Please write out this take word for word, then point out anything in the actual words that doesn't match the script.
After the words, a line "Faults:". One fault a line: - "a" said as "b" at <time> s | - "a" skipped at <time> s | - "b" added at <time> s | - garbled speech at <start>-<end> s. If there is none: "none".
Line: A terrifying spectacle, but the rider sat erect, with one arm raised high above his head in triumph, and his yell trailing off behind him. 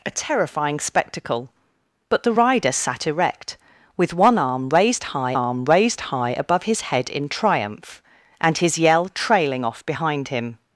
A terrifying spectacle, but the rider sat erect, with one arm raised high arm raised high above his head in triumph, and his yell trailing off behind him.
Faults:
- "arm raised high" added at 5.3 s